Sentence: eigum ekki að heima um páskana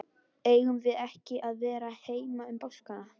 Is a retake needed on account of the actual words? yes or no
yes